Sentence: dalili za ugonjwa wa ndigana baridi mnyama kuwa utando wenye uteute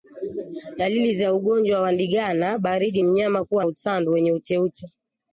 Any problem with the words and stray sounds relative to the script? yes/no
no